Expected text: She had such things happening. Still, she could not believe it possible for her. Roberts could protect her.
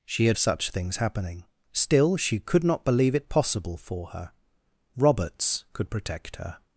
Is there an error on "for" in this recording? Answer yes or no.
no